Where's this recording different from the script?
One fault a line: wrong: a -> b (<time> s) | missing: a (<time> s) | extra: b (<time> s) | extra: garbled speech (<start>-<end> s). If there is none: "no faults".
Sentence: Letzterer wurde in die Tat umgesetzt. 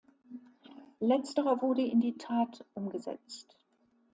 no faults